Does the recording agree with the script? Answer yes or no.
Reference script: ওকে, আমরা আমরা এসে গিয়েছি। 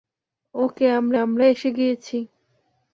yes